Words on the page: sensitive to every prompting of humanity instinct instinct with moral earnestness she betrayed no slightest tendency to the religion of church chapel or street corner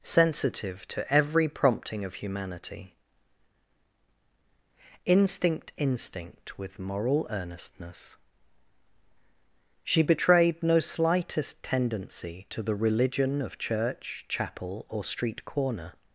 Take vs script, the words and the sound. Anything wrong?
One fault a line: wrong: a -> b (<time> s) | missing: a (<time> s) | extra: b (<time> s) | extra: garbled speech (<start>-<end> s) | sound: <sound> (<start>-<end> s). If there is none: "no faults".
no faults